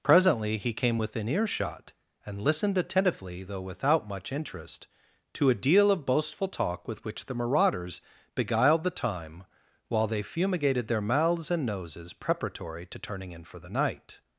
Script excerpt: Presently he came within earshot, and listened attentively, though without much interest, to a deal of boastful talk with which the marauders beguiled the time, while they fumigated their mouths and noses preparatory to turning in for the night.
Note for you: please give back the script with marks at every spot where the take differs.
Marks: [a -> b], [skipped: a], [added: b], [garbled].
Presently he came within earshot, and listened attentively, though without much interest, to a deal of boastful talk with which the marauders beguiled the time, while they fumigated their mouths and noses preparatory to turning in for the night.